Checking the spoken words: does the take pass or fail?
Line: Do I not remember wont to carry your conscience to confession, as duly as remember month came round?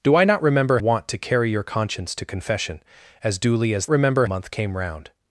pass